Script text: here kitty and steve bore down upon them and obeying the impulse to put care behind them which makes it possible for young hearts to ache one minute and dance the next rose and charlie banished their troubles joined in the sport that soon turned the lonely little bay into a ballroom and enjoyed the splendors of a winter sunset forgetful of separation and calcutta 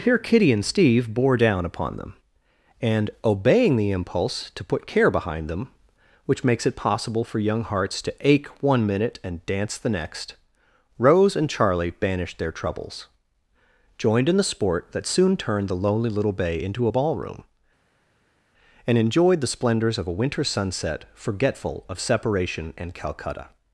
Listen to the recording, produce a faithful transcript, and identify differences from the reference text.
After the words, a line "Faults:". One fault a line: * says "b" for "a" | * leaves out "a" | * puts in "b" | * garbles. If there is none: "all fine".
here kitty and steve bore down upon them and obeying the impulse to put care behind them which makes it possible for young hearts to ache one minute and dance the next rose and charlie banished their troubles joined in the sport that soon turned the lonely little bay into a ballroom and enjoyed the splendors of a winter sunset forgetful of separation and calcutta
Faults:
all fine